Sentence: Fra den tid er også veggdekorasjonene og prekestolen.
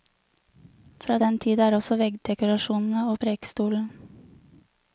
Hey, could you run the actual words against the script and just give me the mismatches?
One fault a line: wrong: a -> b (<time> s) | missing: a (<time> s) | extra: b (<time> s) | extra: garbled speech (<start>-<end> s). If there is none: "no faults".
no faults